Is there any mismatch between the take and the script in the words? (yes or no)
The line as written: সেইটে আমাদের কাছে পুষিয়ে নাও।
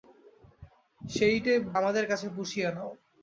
no